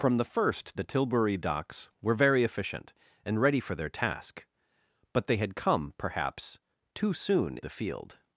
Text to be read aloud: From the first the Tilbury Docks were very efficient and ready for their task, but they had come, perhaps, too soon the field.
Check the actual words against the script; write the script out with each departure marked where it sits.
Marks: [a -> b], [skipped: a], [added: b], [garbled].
From the first the Tilbury Docks were very efficient and ready for their task, but they had come, perhaps, too soon the field.